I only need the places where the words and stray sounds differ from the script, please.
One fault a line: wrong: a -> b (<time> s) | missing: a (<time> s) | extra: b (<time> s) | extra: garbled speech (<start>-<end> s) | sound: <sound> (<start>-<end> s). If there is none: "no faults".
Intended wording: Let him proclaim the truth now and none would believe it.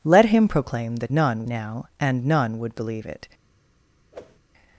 wrong: truth -> none (1.1 s)
sound: whoosh (4.1-4.4 s)